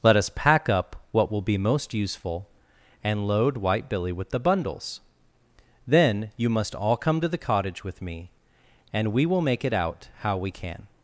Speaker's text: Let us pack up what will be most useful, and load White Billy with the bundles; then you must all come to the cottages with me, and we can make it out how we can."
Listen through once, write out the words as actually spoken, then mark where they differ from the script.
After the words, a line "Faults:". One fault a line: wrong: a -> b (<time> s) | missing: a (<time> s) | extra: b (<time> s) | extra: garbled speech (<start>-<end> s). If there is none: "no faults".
Let us pack up what will be most useful, and load White Billy with the bundles; then you must all come to the cottage with me, and we will make it out how we can."
Faults:
wrong: cottages -> cottage (7.4 s)
wrong: can -> will (9.3 s)